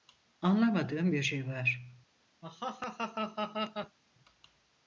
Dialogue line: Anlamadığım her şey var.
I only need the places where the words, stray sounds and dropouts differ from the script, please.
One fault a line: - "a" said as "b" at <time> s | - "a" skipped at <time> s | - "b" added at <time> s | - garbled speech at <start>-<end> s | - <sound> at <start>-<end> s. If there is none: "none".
- "her" said as "bir" at 1.1 s
- laugh at 2.4-4.0 s